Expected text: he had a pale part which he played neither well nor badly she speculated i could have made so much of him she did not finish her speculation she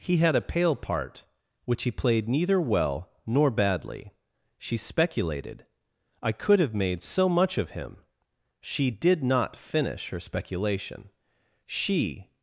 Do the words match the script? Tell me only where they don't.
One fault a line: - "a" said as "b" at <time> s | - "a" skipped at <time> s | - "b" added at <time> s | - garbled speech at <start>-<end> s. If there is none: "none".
none